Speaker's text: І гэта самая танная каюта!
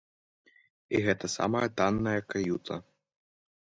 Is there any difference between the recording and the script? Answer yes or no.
no